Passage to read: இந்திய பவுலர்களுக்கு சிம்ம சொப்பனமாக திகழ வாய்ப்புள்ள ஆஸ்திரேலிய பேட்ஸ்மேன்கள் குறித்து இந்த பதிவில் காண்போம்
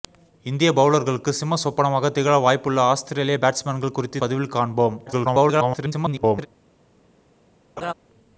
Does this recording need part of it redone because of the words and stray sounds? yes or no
yes